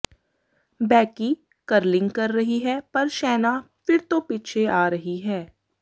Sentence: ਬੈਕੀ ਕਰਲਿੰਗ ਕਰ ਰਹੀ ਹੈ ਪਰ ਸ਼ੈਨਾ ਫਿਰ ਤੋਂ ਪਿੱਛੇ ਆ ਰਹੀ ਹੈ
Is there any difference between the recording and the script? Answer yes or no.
no